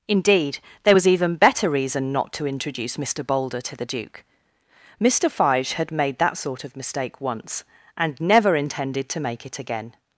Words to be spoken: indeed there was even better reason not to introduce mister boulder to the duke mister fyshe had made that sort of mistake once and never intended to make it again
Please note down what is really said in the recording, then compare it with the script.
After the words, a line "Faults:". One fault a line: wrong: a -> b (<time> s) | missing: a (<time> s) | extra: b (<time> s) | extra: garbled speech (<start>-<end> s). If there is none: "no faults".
indeed there was even better reason not to introduce mister boulder to the duke mister fyshe had made that sort of mistake once and never intended to make it again
Faults:
no faults